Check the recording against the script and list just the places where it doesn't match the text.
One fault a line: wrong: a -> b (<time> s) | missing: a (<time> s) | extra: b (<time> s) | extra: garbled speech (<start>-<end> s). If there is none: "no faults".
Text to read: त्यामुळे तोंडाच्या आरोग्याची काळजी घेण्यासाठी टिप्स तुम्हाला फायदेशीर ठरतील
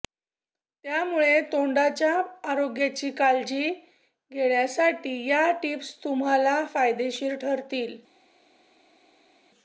extra: या (5.3 s)